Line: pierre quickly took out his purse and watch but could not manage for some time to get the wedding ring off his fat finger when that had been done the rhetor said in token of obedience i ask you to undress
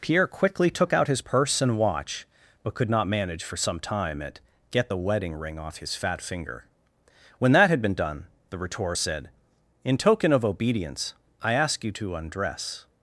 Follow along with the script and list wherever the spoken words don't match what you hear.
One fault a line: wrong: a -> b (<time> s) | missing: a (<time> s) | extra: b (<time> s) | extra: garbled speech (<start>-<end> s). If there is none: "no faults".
wrong: to -> at (4.2 s)